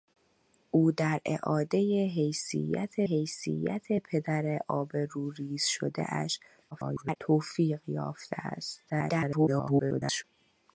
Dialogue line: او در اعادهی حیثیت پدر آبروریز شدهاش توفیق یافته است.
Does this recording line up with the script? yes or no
no